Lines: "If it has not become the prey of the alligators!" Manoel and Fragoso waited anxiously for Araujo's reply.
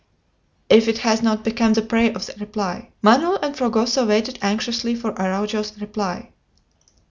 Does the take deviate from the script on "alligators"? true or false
true